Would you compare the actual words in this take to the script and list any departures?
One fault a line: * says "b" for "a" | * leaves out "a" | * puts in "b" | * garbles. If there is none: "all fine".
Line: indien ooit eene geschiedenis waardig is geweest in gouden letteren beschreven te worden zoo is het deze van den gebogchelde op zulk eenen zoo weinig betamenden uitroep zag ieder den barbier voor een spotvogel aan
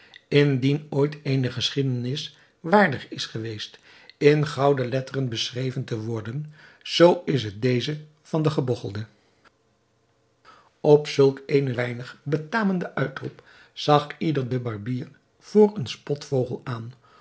* leaves out "zoo"